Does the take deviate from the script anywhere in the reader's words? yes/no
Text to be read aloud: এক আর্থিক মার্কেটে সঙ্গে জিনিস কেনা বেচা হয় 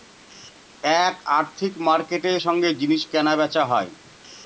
no